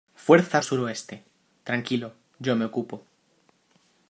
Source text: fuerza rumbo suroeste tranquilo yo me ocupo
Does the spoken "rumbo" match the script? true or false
false